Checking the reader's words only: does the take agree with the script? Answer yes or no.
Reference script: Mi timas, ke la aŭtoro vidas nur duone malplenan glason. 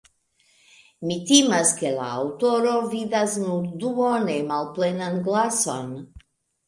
yes